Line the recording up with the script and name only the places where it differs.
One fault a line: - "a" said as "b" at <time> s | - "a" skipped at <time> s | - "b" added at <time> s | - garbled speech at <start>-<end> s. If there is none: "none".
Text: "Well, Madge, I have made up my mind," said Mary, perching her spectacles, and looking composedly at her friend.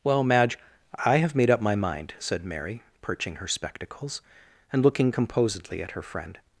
none